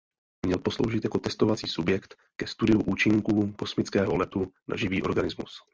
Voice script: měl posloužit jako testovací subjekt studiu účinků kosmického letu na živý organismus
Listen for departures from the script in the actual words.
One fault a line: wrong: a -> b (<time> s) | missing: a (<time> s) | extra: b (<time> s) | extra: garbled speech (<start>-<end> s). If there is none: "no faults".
extra: ke (2.4 s)